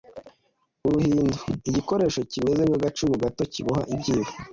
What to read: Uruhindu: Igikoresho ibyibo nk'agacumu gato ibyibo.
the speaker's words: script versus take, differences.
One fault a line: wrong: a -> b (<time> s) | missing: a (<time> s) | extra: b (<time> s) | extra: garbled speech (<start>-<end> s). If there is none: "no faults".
wrong: ibyibo -> kimeze (2.3 s)
extra: kiboha (3.5 s)